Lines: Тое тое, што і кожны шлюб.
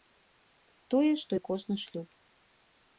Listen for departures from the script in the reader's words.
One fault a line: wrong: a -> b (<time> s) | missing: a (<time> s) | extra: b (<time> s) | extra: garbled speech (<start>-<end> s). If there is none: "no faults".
missing: тое (1.1 s)